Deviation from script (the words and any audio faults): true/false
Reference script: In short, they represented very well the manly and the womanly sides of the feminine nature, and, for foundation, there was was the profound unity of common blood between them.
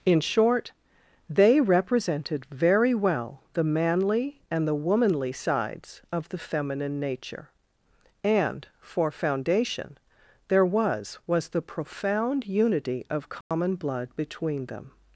true